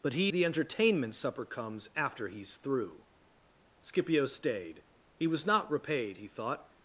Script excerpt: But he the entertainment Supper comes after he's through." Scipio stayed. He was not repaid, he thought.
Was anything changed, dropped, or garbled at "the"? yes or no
no